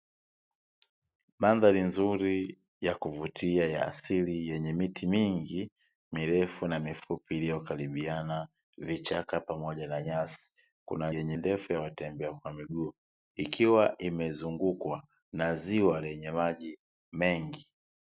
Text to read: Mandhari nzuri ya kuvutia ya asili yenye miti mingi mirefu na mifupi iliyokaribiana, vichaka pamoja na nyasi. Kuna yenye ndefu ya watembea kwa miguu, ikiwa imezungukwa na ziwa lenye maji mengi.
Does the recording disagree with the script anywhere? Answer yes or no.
no